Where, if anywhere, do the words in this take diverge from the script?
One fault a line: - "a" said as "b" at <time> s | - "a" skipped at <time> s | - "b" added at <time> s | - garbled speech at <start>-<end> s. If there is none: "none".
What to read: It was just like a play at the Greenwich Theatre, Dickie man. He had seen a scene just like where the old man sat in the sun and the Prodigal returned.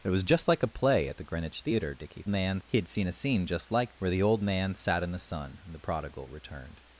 none